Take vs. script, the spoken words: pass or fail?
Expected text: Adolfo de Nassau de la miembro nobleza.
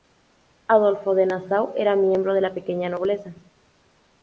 fail